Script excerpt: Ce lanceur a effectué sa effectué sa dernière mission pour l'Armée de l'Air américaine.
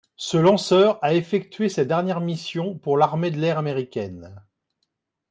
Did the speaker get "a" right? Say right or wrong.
right